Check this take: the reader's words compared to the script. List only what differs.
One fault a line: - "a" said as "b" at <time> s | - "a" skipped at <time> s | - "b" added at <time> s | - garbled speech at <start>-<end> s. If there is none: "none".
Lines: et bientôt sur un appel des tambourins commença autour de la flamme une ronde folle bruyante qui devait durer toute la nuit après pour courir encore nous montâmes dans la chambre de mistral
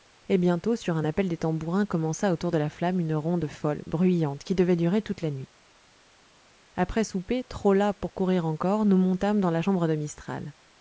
- "souper trop las" added at 7.0 s